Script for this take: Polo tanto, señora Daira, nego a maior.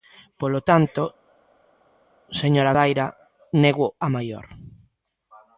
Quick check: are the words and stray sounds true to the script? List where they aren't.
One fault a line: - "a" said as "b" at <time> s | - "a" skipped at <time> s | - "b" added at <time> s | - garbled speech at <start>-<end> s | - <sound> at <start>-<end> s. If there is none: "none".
none